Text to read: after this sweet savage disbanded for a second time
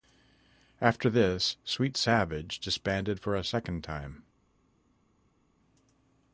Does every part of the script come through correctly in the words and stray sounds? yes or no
yes